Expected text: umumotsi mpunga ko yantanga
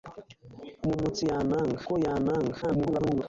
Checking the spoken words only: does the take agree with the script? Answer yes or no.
no